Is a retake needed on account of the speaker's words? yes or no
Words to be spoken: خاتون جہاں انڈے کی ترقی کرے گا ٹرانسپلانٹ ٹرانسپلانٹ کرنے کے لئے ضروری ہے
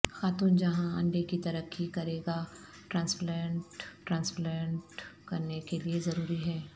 no